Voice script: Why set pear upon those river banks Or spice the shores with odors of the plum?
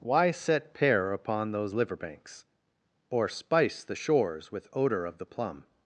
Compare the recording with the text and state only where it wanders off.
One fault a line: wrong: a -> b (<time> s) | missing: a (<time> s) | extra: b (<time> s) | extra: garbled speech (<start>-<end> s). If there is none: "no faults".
wrong: river -> liver (1.8 s)
wrong: odors -> odor (4.7 s)